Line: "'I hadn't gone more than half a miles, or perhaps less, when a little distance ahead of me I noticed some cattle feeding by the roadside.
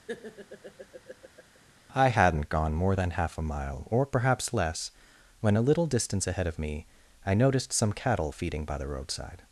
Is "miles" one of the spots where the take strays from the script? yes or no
yes